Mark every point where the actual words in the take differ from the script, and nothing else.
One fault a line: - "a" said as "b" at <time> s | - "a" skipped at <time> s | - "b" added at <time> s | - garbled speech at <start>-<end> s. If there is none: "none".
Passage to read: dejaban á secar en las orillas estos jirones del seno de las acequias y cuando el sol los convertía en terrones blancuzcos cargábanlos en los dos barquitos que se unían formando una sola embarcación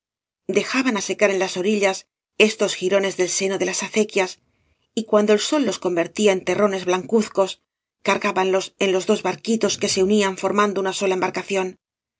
none